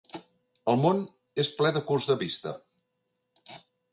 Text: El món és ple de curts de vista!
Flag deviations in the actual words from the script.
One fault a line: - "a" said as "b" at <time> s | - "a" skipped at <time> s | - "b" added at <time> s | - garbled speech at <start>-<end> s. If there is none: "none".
none